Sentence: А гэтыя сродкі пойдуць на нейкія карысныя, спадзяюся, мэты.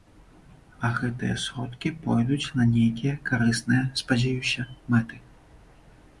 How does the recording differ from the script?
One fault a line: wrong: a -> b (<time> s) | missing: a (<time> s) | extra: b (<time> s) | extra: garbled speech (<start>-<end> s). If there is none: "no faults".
no faults